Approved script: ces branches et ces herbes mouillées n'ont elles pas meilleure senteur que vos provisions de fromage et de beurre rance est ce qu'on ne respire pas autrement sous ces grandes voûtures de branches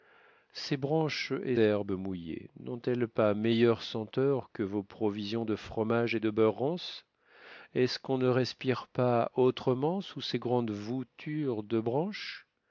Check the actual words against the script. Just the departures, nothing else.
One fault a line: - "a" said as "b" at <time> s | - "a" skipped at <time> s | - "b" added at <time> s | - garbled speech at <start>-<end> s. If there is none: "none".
- "ces" skipped at 1.6 s